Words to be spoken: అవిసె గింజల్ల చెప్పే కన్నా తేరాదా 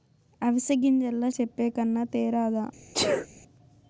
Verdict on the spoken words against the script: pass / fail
pass